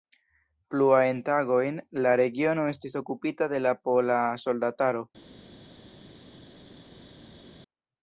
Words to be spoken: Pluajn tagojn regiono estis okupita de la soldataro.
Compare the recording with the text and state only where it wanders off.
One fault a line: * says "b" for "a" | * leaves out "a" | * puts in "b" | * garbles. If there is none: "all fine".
* puts in "la"
* puts in "pola"